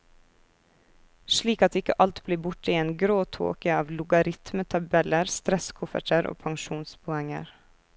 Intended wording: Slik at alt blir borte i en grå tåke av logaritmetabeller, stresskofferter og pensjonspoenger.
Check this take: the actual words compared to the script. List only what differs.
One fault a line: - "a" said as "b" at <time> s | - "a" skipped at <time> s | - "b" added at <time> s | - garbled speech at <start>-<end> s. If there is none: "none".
- "ikke" added at 1.8 s